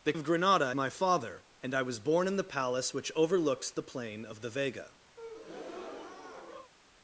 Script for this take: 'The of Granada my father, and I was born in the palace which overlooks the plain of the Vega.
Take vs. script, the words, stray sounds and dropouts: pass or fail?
fail